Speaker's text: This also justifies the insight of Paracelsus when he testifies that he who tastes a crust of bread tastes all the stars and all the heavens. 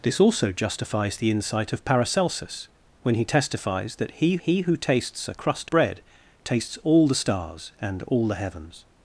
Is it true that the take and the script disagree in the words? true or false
true